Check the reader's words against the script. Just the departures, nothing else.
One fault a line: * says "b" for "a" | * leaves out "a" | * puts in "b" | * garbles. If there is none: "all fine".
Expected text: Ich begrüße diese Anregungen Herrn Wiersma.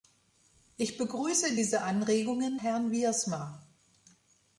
all fine